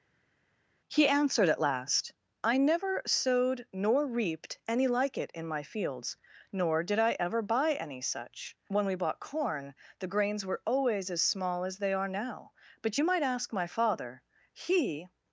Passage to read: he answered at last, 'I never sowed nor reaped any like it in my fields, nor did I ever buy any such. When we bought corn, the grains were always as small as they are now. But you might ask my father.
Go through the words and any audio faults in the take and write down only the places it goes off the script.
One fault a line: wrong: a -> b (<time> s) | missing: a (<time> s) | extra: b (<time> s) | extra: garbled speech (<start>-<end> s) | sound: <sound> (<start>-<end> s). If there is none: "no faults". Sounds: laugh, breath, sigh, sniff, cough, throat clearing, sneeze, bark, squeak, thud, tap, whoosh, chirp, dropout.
extra: He (14.5 s)